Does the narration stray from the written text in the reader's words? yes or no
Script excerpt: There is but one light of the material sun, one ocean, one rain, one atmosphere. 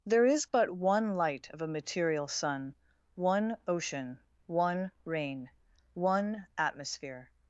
yes